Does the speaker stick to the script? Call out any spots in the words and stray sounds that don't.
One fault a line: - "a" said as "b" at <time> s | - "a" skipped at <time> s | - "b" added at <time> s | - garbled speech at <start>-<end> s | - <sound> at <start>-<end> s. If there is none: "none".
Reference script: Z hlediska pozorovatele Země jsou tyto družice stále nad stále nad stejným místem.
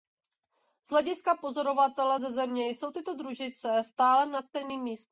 - "ze" added at 2.2 s
- "stále nad" skipped at 4.4 s